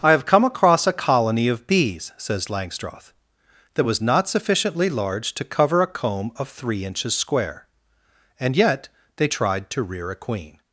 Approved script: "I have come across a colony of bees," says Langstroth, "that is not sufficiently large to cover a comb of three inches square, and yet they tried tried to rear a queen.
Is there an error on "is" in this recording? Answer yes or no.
yes